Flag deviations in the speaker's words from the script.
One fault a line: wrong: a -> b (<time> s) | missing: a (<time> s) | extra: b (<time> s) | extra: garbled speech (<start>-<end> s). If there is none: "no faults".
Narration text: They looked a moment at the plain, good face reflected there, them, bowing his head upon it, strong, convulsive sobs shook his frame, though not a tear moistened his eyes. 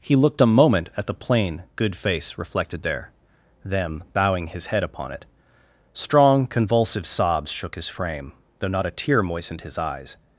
wrong: They -> He (0.0 s)